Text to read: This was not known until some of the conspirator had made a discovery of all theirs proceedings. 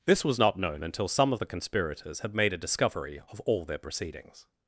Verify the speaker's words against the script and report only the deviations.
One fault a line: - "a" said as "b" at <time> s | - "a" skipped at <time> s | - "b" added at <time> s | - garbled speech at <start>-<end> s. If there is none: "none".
- "conspirator" said as "conspirators" at 1.5 s
- "theirs" said as "their" at 3.6 s